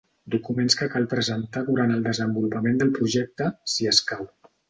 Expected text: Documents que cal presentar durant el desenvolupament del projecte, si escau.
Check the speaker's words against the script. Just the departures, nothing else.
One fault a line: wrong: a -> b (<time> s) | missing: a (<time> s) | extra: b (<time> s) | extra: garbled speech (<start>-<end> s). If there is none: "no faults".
no faults